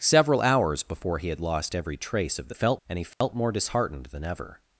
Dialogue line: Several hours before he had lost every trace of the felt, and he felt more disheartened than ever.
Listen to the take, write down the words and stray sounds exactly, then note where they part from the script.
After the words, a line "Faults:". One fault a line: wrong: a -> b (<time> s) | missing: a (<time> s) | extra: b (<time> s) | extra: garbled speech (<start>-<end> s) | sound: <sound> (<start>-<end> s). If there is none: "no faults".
Several hours before he had lost every trace of the felt, and he felt more disheartened than ever.
Faults:
sound: dropout (3.1-3.2 s)